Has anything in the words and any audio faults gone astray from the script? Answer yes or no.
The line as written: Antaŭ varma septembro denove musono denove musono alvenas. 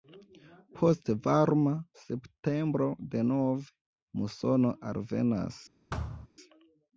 yes